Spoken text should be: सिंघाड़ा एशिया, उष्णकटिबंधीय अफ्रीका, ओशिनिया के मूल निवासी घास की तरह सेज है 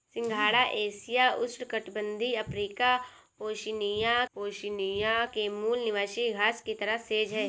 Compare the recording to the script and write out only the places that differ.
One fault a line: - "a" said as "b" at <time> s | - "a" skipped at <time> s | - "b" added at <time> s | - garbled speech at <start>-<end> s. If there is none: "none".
- "ओशिनिया" added at 4.3 s